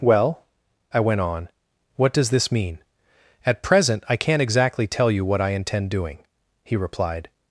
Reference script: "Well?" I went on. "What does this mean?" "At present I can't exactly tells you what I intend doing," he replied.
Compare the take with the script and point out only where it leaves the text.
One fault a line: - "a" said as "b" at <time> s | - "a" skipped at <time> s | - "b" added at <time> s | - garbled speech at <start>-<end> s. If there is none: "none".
- "tells" said as "tell" at 4.9 s